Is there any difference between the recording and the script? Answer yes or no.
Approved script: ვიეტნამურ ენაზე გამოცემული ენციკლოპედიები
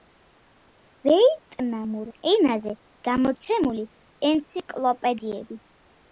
no